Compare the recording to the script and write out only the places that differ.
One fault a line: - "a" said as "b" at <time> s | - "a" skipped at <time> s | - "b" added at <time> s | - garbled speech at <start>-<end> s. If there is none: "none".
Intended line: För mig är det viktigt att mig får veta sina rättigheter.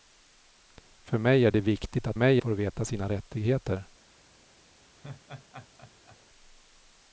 none